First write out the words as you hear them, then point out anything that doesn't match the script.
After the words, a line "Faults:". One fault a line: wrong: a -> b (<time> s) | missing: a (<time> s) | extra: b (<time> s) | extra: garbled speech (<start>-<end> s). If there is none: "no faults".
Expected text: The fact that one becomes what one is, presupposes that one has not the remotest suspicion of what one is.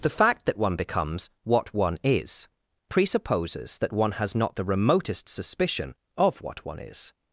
The fact that one becomes what one is, presupposes that one has not the remotest suspicion of what one is.
Faults:
no faults